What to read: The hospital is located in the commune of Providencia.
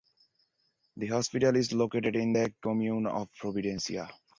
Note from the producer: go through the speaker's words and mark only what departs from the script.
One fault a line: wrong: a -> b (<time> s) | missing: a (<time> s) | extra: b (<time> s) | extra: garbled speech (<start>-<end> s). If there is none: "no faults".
no faults